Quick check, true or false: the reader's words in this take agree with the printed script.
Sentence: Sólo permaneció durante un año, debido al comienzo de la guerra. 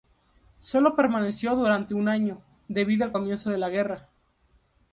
true